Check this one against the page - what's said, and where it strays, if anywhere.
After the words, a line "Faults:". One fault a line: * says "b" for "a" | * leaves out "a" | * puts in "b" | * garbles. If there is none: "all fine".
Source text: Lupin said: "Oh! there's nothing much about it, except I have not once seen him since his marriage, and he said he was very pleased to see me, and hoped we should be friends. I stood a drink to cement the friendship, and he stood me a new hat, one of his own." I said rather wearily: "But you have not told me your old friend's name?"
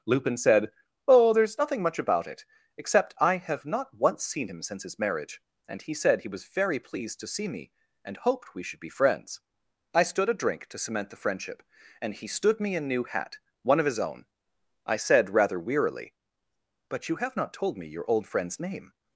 Lupin said: "Oh! there's nothing much about it, except I have not once seen him since his marriage, and he said he was very pleased to see me, and hoped we should be friends. I stood a drink to cement the friendship, and he stood me a new hat, one of his own." I said rather wearily: "But you have not told me your old friend's name?"
Faults:
all fine